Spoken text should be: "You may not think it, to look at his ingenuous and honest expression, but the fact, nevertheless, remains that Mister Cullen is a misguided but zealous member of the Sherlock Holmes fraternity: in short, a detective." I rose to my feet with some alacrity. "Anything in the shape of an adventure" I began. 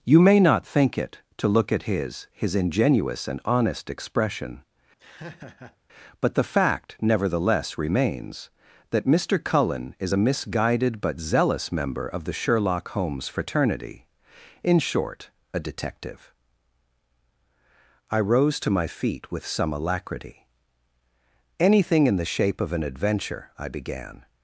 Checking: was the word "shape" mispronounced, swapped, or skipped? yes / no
no